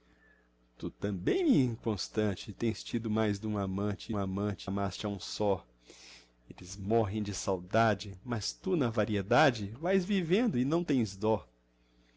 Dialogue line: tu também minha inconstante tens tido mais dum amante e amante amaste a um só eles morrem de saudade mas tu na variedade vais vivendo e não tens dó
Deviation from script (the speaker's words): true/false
false